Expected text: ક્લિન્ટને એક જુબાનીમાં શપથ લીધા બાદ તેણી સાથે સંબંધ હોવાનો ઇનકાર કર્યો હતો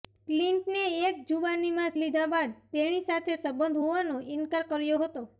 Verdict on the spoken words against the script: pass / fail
fail